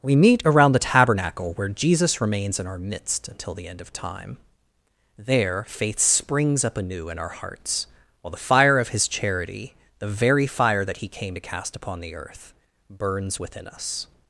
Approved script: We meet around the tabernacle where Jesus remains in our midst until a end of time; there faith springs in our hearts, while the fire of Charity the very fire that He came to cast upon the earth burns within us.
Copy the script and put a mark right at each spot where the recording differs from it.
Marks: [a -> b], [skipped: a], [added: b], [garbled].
We meet around the tabernacle where Jesus remains in our midst until [a -> the] end of time; there faith springs [added: up anew] in our hearts, while the fire of [added: His] Charity the very fire that He came to cast upon the earth burns within us.